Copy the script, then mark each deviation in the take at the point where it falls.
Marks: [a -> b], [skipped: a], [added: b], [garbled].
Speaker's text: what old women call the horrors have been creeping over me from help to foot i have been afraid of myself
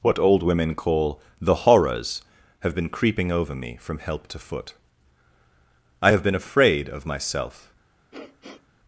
what old women call the horrors have been creeping over me from help to foot i have been afraid of myself